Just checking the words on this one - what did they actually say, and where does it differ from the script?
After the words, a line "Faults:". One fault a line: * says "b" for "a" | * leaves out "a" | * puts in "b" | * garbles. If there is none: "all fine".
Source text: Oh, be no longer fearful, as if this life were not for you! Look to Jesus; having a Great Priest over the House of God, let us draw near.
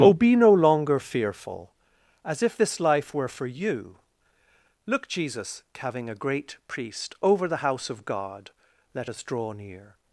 Oh, be no longer fearful, as if this life were for you! Look Jesus; having a Great Priest over the House of God, let us draw near.
Faults:
* leaves out "not"
* leaves out "to"